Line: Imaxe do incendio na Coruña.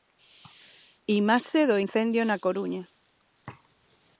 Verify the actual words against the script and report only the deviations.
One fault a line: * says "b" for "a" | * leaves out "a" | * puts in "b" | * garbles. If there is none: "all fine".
all fine